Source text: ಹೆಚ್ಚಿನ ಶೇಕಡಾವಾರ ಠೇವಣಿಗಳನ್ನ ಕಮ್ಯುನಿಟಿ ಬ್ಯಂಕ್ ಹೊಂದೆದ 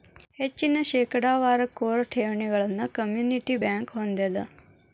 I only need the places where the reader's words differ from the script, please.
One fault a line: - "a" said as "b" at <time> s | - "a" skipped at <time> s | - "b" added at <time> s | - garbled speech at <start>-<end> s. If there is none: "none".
- "ಕೋರ್" added at 1.8 s